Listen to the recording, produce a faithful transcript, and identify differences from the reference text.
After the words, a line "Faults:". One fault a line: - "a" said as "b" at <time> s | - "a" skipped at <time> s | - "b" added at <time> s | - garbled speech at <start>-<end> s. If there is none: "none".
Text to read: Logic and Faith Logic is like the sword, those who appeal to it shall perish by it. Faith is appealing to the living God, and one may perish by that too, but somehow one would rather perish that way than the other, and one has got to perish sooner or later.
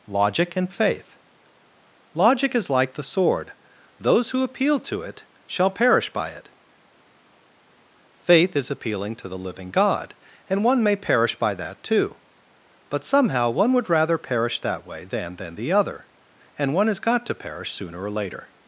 Logic and Faith Logic is like the sword, those who appeal to it shall perish by it. Faith is appealing to the living God, and one may perish by that too, but somehow one would rather perish that way than than the other, and one has got to perish sooner or later.
Faults:
- "than" added at 15.4 s